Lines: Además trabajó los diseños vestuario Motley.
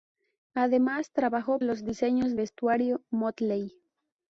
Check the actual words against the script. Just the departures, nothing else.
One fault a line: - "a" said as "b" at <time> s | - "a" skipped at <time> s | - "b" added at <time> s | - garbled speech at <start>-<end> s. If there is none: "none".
none